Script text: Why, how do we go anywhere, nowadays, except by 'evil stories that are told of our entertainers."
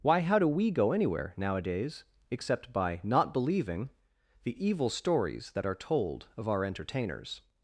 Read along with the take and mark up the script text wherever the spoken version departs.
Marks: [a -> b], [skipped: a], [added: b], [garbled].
Why, how do we go anywhere, nowadays, except by [added: not believing the] 'evil stories that are told of our entertainers."